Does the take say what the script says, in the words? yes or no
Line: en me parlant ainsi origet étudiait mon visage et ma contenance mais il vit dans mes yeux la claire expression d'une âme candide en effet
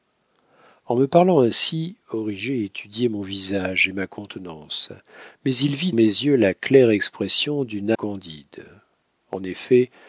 no